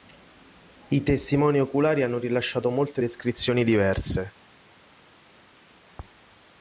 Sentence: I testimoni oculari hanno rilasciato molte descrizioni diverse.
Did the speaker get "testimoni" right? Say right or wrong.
right